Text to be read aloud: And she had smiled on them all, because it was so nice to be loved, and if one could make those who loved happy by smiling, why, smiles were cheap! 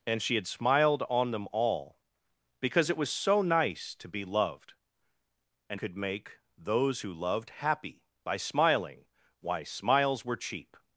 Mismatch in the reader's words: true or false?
true